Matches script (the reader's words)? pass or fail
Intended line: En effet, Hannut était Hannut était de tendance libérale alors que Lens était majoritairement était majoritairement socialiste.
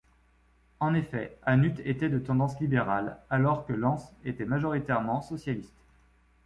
fail